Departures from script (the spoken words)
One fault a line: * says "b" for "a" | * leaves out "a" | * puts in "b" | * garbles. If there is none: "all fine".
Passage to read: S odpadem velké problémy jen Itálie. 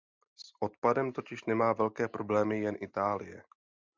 * puts in "totiž nemá"